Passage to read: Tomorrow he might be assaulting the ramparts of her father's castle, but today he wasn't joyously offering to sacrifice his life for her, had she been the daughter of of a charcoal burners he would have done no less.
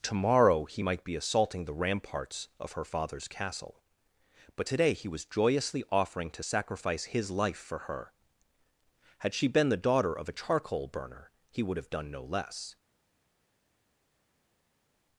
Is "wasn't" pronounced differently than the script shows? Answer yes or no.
yes